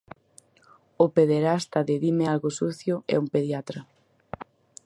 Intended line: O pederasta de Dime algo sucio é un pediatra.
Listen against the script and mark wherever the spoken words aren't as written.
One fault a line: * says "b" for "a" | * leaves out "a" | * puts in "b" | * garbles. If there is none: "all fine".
all fine